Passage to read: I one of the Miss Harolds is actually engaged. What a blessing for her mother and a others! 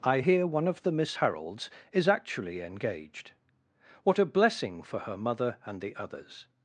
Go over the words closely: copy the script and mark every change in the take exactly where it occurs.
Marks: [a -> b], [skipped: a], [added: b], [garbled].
I [added: hear] one of the Miss Harolds is actually engaged. What a blessing for her mother and [a -> the] others!